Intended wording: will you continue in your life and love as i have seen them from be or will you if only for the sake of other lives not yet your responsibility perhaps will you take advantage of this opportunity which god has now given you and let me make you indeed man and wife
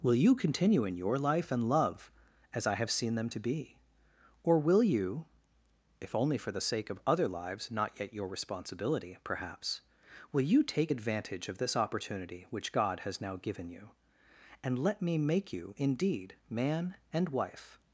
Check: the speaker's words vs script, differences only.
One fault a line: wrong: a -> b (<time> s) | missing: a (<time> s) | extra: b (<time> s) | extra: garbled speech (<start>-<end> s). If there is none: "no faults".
wrong: from -> to (3.3 s)